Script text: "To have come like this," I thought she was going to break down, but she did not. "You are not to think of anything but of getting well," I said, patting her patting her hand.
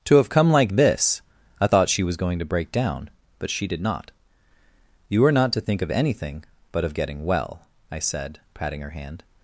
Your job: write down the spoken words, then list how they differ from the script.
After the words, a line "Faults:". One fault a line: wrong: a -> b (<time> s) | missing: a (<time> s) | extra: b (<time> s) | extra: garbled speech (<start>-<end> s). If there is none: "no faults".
"To have come like this," I thought she was going to break down, but she did not. "You are not to think of anything but of getting well," I said, patting her hand.
Faults:
missing: patting her (8.9 s)